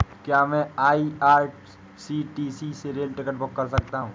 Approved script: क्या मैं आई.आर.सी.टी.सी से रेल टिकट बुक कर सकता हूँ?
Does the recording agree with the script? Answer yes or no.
yes